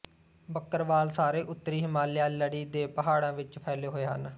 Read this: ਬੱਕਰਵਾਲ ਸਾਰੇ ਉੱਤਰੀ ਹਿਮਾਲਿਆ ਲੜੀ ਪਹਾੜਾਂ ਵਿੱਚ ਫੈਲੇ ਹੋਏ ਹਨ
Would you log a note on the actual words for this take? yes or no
yes